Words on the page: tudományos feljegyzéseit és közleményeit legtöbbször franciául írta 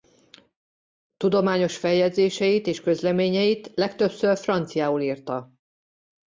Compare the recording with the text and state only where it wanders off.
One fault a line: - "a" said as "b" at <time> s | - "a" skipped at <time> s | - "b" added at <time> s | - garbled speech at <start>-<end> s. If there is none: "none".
none